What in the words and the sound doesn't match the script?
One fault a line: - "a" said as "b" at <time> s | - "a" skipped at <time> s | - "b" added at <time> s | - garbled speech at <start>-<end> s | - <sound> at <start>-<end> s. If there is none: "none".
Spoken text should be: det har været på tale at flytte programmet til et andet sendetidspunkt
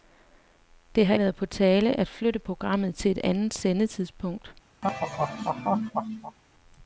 - laugh at 4.8-6.4 s